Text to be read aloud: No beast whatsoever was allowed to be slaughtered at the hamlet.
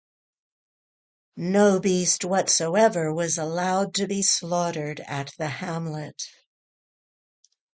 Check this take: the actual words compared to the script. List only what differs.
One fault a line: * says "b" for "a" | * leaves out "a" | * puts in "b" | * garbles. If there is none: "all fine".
all fine